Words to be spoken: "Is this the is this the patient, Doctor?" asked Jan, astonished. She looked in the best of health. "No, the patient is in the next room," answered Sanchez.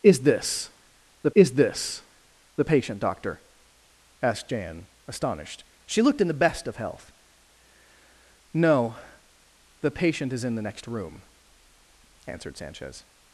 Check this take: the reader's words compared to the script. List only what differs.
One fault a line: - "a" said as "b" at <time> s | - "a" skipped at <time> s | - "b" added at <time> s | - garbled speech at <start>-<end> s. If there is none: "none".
none